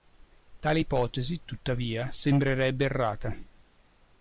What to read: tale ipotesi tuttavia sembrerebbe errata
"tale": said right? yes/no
yes